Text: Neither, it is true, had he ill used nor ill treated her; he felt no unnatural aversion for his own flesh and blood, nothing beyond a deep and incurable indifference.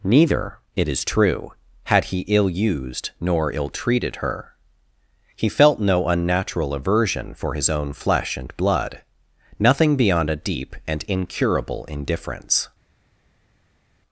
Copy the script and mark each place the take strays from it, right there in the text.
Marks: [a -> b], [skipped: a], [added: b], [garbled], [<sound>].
Neither, it is true, had he ill used nor ill treated her; he felt no unnatural aversion for his own flesh and blood, nothing beyond a deep and incurable indifference.